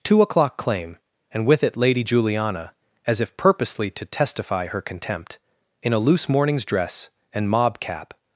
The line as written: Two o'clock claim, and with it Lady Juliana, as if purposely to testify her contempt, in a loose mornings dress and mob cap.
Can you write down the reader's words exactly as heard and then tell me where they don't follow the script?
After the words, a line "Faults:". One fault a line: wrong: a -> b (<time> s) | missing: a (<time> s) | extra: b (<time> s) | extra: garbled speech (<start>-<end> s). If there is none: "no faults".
Two o'clock claim, and with it Lady Juliana, as if purposely to testify her contempt, in a loose mornings dress and mob cap.
Faults:
no faults